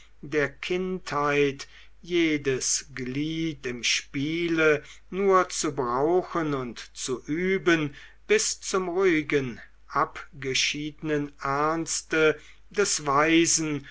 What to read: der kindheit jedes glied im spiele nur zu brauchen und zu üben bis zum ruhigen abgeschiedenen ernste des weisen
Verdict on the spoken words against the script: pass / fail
pass